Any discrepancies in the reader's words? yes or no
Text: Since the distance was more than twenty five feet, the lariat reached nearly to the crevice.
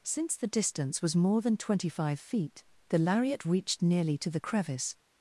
no